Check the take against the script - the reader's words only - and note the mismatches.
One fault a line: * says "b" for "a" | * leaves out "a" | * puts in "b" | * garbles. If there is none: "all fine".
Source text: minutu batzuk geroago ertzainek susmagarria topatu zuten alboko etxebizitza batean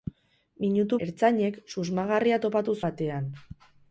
* leaves out "batzuk geroago"
* leaves out "zuten alboko etxebizitza"